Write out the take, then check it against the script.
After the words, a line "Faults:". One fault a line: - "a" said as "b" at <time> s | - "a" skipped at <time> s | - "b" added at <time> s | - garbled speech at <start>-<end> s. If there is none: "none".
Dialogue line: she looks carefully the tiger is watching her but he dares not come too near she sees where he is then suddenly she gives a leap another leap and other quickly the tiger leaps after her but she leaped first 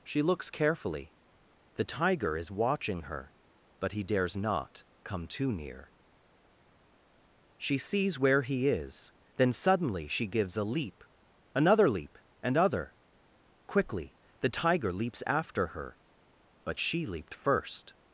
she looks carefully the tiger is watching her but he dares not come too near she sees where he is then suddenly she gives a leap another leap and other quickly the tiger leaps after her but she leaped first
Faults:
none